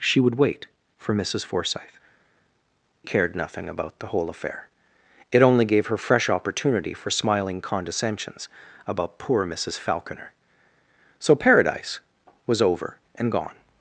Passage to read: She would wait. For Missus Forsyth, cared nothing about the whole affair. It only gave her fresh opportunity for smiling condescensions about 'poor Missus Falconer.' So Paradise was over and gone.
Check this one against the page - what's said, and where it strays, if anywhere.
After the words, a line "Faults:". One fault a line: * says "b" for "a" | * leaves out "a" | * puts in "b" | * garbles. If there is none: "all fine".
She would wait. For Missus Forsyth, cared nothing about the whole affair. It only gave her fresh opportunity for smiling condescensions about 'poor Missus Falconer.' So Paradise was over and gone.
Faults:
all fine